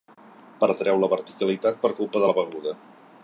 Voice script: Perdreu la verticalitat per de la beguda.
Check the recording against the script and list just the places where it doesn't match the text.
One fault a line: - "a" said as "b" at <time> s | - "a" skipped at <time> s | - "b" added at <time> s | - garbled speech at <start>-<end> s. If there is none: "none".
- "culpa" added at 2.0 s